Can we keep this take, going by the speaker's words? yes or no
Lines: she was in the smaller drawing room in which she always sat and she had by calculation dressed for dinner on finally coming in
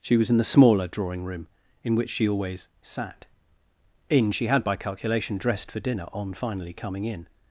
no